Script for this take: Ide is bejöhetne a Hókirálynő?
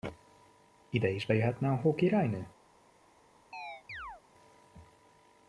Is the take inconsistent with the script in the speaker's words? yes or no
no